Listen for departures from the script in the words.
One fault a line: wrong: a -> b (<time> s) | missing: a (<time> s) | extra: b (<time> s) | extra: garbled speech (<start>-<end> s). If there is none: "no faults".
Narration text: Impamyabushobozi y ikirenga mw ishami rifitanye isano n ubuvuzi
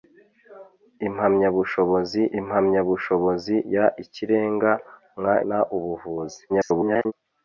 extra: impamyabushobozi (2.4 s)
missing: ishami rifitanye isano (5.3 s)
extra: garbled speech (6.5-7.1 s)